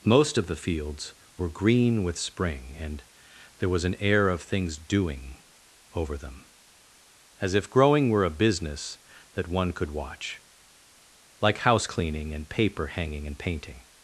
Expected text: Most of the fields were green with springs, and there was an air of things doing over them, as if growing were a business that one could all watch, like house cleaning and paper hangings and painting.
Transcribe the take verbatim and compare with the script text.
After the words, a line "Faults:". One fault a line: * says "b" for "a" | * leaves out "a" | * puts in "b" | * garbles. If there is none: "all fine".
Most of the fields were green with spring, and there was an air of things doing over them, as if growing were a business that one could watch, like house cleaning and paper hanging and painting.
Faults:
* says "spring" for "springs"
* leaves out "all"
* says "hanging" for "hangings"